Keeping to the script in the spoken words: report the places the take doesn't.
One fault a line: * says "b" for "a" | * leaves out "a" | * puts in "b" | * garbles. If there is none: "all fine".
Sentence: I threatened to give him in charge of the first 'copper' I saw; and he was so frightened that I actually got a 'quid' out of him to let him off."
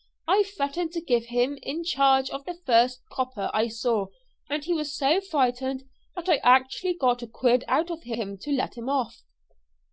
all fine